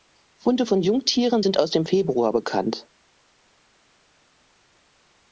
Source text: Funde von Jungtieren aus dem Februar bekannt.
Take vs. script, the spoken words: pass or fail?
fail